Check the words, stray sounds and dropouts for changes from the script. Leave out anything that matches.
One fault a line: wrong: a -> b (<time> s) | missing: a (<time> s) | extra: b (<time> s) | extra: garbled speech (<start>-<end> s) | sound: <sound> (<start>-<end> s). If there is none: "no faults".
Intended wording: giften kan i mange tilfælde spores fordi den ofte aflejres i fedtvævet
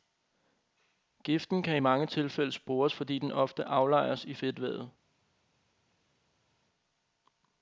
no faults